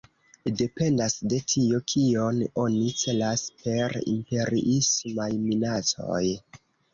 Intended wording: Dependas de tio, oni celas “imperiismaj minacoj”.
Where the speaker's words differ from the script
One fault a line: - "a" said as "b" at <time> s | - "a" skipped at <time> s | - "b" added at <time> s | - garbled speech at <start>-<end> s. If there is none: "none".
- "kion" added at 1.9 s
- "per" added at 3.6 s